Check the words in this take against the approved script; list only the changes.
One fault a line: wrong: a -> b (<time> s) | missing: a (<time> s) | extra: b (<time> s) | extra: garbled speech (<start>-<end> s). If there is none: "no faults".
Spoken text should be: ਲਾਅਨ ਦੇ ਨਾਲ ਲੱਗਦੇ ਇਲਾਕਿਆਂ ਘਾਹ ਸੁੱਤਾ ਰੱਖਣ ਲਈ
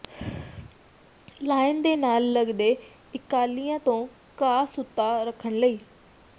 extra: ਤੋਂ (3.8 s)